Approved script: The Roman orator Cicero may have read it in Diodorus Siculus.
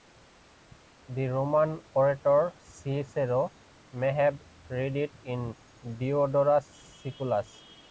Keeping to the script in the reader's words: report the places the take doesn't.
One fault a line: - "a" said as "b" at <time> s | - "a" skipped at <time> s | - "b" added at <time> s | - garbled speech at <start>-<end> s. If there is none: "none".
none